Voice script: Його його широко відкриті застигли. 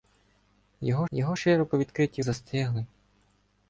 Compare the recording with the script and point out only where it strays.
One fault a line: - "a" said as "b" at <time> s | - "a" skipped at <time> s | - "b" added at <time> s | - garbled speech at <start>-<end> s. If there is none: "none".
none